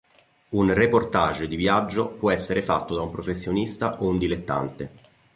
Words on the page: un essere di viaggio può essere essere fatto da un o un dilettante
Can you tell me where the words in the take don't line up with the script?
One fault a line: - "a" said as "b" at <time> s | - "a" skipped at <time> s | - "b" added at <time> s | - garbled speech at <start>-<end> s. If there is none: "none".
- "essere" said as "reportage" at 0.7 s
- "essere" skipped at 2.6 s
- "professionista" added at 3.1 s